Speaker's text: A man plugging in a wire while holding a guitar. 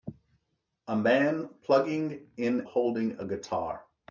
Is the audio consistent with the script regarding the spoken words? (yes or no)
no